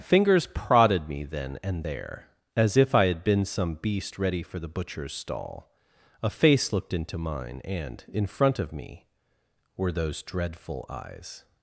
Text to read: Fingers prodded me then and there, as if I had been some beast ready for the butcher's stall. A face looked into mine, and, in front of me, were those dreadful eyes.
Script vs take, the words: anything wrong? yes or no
no